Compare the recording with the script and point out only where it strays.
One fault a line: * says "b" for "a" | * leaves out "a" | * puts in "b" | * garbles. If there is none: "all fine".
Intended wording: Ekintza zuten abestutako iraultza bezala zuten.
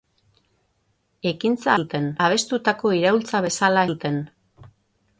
all fine